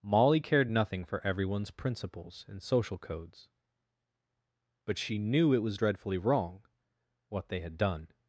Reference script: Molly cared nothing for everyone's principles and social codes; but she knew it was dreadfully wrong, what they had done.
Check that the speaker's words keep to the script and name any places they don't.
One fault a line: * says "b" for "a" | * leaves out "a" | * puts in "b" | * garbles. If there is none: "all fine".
all fine